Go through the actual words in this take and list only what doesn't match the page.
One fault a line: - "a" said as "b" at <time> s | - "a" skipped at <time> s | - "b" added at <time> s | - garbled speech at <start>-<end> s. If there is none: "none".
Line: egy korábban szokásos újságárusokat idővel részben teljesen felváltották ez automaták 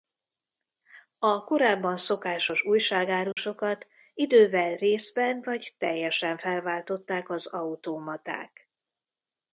- "egy" said as "a" at 1.2 s
- "vagy" added at 5.4 s
- "ez" said as "az" at 7.3 s